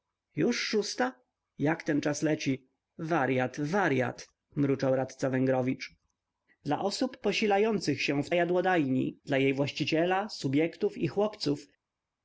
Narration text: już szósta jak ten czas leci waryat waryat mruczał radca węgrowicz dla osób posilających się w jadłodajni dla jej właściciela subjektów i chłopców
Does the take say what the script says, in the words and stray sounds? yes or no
yes